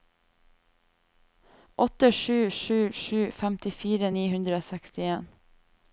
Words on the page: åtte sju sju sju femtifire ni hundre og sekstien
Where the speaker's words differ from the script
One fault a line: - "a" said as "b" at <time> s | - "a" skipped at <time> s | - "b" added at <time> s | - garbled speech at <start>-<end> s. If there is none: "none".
none